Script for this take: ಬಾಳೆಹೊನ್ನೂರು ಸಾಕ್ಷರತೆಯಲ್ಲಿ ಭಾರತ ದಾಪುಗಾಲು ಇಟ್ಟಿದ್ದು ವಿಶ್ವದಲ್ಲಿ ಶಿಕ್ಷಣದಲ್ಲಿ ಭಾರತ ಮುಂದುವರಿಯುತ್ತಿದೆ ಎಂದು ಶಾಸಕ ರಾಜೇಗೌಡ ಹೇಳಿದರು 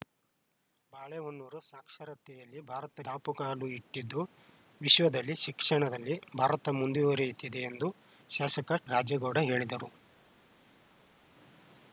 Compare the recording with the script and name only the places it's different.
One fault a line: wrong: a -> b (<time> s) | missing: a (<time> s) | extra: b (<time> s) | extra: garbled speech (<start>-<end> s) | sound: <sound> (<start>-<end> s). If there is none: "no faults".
no faults